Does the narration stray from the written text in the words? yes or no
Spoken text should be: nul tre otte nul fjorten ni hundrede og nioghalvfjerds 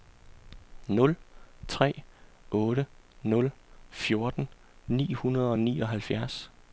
no